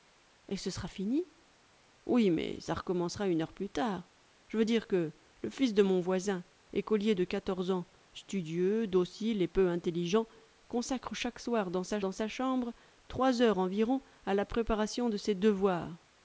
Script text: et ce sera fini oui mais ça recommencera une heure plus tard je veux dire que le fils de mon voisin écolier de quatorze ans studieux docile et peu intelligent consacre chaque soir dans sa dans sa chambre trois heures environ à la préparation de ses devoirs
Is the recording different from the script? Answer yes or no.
no